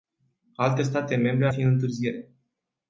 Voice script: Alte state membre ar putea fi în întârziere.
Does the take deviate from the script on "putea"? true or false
true